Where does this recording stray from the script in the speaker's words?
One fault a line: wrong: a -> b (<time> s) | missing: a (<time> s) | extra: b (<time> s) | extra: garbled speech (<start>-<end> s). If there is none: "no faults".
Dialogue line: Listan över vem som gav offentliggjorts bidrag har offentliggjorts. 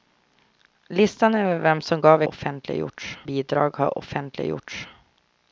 no faults